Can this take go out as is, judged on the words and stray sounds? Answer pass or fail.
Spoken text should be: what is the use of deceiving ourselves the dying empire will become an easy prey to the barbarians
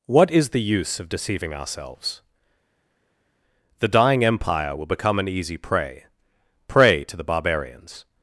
fail